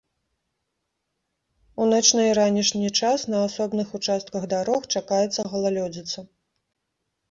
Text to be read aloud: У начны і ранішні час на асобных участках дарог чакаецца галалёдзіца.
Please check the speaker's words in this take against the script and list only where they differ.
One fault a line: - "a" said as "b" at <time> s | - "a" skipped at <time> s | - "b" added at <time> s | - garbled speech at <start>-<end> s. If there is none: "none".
none